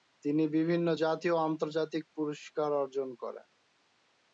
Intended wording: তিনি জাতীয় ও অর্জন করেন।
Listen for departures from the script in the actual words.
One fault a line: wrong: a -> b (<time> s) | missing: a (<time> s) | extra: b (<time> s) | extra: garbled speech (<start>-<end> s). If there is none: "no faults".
extra: বিভিন্ন (0.6 s)
extra: আন্তর্জাতিক পুরস্কার (1.5 s)